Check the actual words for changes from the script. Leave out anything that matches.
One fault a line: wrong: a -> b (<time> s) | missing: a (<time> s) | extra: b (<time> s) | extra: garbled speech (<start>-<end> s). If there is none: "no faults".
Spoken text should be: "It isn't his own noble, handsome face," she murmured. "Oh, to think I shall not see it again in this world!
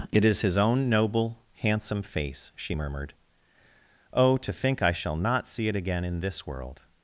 wrong: isn't -> is (0.2 s)